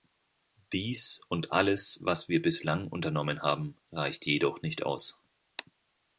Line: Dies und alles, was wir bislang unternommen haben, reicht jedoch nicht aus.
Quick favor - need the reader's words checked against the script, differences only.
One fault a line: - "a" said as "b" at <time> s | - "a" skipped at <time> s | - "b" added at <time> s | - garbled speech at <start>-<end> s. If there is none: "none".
none